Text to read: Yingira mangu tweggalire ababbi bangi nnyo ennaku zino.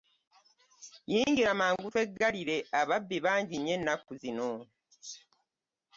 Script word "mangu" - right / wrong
right